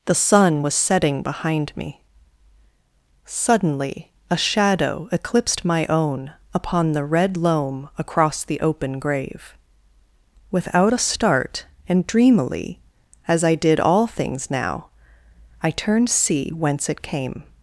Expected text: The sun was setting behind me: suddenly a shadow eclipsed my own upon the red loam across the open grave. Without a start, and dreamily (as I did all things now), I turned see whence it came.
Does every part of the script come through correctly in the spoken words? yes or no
yes